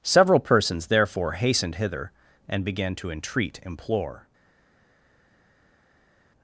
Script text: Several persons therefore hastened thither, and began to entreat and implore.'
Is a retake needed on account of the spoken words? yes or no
yes